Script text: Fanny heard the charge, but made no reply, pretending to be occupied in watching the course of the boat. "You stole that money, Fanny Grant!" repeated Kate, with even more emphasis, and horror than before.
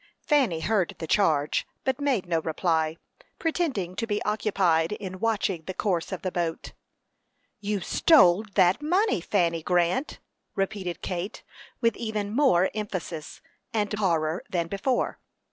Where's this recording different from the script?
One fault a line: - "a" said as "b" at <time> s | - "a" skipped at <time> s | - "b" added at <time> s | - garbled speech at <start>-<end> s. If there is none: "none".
none